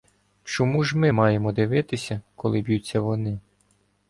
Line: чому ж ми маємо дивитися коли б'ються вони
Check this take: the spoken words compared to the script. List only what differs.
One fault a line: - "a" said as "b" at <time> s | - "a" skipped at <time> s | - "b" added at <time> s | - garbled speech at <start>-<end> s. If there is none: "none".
none